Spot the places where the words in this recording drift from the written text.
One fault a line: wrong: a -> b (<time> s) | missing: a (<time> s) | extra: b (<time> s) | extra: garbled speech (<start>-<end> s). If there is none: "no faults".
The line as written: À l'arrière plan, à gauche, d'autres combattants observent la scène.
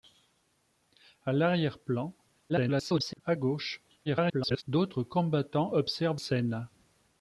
extra: garbled speech (2.5-3.2 s)
extra: garbled speech (4.1-4.6 s)
missing: la (6.2 s)